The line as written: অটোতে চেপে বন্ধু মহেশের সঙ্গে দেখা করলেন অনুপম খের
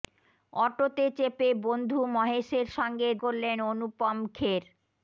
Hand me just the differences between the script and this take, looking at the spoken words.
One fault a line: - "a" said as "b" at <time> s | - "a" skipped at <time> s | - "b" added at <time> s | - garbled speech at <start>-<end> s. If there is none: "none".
- "দেখা" skipped at 3.1 s